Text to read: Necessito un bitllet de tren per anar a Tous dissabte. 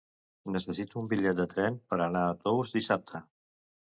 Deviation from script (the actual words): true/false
false